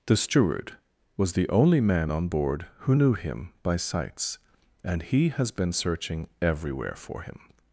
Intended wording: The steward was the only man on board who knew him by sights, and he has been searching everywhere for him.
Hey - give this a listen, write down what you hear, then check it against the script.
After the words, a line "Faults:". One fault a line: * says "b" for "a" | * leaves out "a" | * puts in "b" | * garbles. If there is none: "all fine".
The steward was the only man on board who knew him by sights, and he has been searching everywhere for him.
Faults:
all fine